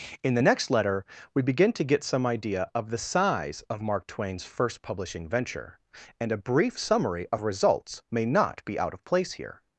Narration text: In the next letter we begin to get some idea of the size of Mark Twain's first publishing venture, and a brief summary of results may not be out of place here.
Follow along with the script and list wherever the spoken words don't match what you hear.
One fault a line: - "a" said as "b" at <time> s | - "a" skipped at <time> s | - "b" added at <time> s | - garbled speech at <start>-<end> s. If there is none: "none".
none